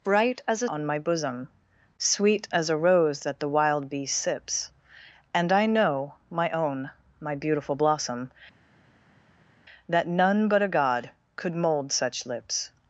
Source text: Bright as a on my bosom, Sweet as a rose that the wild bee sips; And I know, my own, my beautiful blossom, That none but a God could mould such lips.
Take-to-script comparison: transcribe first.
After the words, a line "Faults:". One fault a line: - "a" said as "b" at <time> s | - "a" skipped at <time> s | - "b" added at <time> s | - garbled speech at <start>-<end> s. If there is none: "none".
Bright as a on my bosom, Sweet as a rose that the wild bee sips; And I know, my own, my beautiful blossom, That none but a God could mould such lips.
Faults:
none